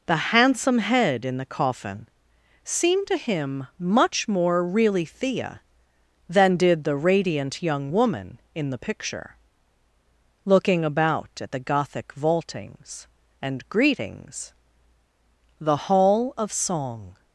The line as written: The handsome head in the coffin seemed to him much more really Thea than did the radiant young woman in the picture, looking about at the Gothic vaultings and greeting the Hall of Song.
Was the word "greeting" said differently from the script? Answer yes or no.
yes